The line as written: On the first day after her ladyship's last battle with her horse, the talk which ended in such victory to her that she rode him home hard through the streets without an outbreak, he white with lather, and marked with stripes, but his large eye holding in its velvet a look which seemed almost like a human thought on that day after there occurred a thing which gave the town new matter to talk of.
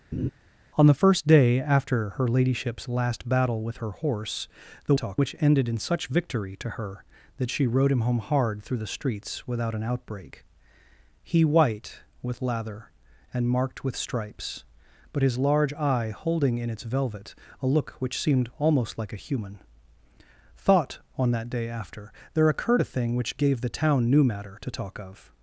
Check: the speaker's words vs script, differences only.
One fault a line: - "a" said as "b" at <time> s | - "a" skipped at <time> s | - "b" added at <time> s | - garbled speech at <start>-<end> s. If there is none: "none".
none